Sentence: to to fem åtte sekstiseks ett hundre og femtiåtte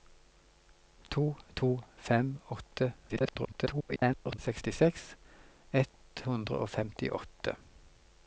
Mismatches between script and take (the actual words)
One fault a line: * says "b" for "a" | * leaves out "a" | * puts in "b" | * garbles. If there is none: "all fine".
* garbles